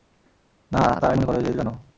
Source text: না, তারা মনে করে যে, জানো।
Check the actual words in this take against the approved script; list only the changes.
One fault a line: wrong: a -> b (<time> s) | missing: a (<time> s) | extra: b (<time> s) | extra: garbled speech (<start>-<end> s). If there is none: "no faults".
no faults